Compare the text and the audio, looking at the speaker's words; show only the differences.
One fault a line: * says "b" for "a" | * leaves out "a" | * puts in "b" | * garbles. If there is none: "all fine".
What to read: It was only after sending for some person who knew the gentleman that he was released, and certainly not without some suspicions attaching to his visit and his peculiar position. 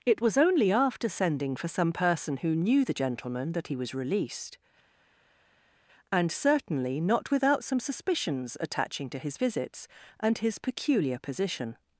* says "visits" for "visit"